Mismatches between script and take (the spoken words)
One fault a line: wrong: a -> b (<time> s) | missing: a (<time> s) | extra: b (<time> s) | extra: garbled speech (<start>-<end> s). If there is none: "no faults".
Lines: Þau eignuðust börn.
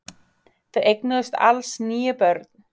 extra: alls níu (1.5 s)